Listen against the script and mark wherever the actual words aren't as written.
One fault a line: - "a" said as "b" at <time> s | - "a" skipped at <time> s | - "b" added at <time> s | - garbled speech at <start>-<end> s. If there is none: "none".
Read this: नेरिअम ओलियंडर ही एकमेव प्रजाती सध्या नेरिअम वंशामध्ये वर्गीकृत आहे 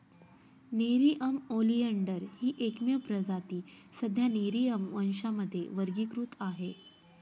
none